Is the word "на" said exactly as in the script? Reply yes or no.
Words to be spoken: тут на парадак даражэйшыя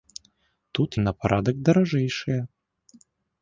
yes